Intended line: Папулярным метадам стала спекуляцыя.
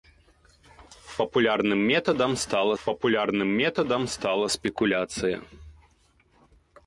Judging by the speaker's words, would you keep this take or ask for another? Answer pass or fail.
fail